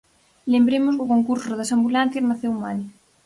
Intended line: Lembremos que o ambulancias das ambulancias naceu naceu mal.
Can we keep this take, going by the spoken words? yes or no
no